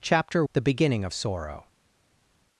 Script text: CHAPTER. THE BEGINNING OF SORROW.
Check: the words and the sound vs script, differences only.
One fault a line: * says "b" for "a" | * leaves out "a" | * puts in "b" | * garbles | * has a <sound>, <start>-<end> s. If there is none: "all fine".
all fine